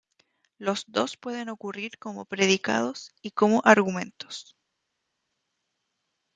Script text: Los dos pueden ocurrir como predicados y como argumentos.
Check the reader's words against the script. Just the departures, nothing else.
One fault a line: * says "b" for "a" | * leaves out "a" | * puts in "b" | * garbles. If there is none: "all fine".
all fine